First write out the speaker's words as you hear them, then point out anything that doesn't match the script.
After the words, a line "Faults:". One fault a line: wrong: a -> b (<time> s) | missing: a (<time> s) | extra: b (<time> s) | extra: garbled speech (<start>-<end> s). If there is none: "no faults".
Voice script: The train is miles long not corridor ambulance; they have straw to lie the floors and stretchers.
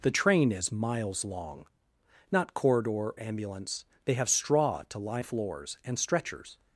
The train is miles long not corridor ambulance; they have straw to lie the floors and stretchers.
Faults:
no faults